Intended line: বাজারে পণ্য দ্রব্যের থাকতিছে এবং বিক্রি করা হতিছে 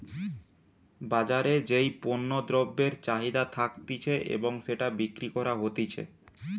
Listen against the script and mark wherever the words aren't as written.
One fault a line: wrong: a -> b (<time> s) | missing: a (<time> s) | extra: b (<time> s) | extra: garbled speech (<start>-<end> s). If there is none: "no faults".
extra: যেই (1.7 s)
extra: চাহিদা (3.0 s)
extra: সেটা (4.7 s)